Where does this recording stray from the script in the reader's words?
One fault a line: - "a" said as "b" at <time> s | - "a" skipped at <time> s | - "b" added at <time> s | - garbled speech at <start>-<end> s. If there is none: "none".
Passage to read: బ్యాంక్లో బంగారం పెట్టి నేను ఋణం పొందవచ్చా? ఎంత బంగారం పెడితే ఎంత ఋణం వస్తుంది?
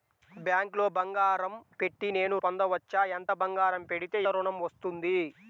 - "ఋణం" skipped at 2.4 s
- "ఎంత" skipped at 4.2 s